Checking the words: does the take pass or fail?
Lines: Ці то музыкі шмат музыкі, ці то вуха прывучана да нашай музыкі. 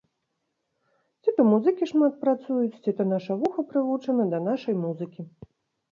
fail